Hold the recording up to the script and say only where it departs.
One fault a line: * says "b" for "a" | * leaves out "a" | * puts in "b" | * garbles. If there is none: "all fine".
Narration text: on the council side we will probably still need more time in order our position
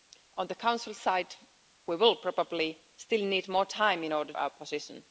all fine